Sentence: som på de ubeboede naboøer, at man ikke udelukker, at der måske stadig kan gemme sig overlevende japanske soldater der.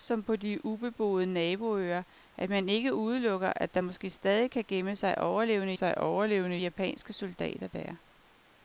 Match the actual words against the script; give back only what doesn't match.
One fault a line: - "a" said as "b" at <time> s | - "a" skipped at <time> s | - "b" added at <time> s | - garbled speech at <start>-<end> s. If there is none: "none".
- "sig overlevende" added at 5.7 s